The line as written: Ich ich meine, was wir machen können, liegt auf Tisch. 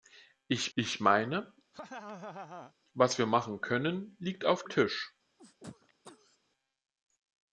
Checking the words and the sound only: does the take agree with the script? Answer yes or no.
no